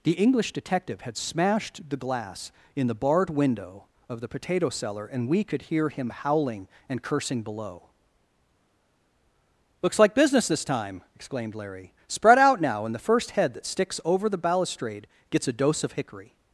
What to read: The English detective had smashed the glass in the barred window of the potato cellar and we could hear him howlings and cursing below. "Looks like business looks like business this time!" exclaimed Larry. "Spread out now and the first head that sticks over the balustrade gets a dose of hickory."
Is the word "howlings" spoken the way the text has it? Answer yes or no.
no